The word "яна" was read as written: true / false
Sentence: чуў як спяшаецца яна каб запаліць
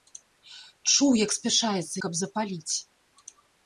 false